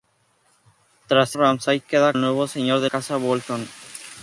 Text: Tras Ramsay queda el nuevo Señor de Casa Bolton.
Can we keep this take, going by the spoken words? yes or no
yes